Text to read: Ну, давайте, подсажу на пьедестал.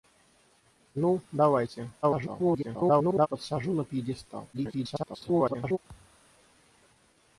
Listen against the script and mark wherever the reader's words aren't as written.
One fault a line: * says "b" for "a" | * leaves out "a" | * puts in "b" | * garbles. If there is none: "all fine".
* garbles
* garbles